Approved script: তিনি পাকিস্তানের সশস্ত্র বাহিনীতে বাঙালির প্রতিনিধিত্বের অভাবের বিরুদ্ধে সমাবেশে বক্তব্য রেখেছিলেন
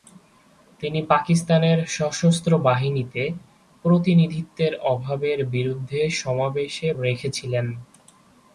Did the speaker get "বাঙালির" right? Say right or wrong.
wrong